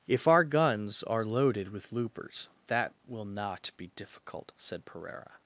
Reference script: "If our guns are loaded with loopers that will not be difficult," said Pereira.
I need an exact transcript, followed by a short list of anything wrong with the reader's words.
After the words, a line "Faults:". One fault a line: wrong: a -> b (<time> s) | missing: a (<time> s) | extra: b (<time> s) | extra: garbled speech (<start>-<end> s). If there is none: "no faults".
"If our guns are loaded with loopers that will not be difficult," said Pereira.
Faults:
no faults